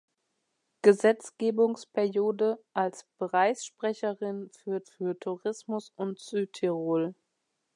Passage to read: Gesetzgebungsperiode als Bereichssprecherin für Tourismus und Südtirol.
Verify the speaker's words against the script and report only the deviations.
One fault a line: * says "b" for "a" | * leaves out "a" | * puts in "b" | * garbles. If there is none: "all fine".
* puts in "für"